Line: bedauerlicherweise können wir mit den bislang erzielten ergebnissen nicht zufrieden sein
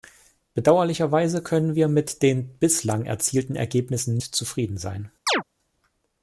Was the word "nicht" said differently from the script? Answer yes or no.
yes